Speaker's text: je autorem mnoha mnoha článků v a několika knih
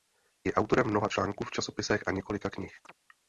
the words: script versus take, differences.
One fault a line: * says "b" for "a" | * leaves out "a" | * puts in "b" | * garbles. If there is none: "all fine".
* leaves out "mnoha"
* puts in "časopisech"